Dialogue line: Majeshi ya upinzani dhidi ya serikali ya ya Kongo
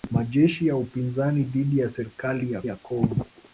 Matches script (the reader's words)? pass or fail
pass